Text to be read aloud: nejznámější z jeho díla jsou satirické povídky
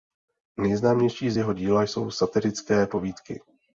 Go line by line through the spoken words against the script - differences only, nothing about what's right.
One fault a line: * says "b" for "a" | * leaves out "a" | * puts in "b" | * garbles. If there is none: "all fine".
all fine